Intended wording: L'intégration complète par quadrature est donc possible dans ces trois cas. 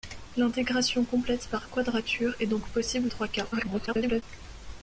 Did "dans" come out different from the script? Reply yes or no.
yes